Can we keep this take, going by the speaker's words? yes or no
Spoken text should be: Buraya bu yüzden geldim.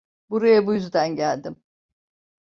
yes